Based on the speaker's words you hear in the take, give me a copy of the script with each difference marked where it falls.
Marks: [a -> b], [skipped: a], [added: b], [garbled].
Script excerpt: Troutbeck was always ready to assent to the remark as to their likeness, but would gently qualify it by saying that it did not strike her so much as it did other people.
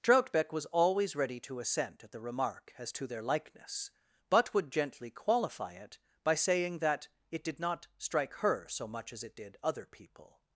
Troutbeck was always ready to assent [to -> at] the remark as to their likeness, but would gently qualify it by saying that it did not strike her so much as it did other people.